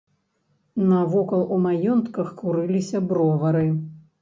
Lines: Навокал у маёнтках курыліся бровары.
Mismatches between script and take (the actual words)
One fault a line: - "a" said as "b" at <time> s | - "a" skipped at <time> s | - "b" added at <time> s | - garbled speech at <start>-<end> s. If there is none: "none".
none